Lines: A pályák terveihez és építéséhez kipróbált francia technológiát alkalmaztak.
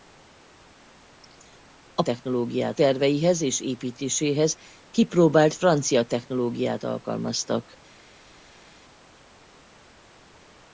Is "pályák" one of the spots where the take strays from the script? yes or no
yes